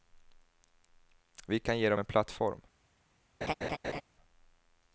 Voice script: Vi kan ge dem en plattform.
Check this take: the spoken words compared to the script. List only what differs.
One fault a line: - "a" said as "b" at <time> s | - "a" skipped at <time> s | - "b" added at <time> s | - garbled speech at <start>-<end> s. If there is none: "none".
none